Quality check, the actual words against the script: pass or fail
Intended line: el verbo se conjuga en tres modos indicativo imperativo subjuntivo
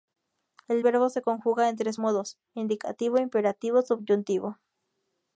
pass